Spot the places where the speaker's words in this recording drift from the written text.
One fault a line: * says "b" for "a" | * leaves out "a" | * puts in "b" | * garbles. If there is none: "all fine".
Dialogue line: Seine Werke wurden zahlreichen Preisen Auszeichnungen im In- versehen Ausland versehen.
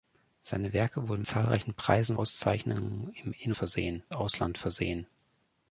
all fine